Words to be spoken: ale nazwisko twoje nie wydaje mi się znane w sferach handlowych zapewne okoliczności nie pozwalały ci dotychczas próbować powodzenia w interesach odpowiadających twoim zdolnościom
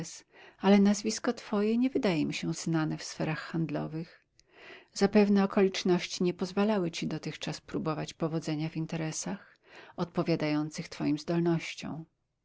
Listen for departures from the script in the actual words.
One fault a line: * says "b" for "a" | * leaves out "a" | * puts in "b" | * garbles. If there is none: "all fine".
all fine